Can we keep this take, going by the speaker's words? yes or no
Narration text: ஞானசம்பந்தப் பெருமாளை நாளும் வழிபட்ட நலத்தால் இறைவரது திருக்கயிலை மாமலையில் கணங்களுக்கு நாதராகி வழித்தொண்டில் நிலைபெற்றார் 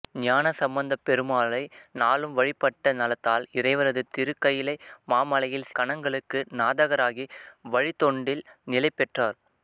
yes